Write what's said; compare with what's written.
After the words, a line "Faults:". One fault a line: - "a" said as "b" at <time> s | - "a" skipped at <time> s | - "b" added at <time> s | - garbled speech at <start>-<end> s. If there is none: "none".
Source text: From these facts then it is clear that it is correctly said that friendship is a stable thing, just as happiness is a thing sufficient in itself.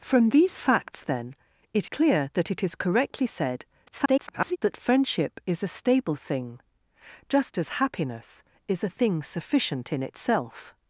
From these facts then it clear that it is correctly said [garbled] that friendship is a stable thing, just as happiness is a thing sufficient in itself.
Faults:
- "is" skipped at 1.9 s
- garbled speech at 3.9-4.6 s